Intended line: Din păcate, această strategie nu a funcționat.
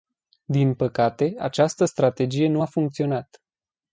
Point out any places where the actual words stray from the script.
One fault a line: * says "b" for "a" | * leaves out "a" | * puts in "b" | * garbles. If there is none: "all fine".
all fine